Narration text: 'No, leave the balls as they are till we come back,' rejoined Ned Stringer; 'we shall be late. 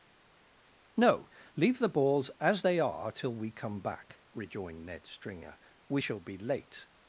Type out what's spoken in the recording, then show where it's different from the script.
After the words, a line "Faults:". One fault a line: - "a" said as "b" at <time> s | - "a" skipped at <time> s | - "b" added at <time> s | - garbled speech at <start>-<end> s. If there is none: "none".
'No, leave the balls as they are till we come back,' rejoined Ned Stringer; 'we shall be late.
Faults:
none